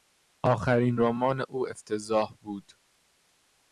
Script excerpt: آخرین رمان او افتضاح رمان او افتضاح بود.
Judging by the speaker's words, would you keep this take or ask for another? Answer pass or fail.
fail